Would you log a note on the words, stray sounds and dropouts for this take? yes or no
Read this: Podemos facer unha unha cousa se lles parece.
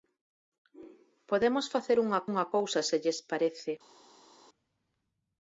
no